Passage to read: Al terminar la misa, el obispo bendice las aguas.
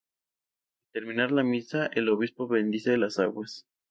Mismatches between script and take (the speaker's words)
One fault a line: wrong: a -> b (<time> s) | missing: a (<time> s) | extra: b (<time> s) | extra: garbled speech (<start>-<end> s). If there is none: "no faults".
no faults